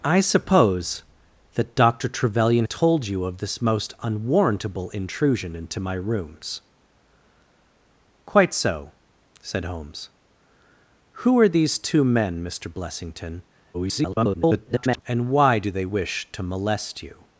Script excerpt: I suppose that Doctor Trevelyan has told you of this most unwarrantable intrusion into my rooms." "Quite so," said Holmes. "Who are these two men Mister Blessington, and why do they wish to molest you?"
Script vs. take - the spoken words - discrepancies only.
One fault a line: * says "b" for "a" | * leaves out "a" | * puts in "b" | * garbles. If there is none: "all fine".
* leaves out "has"
* garbles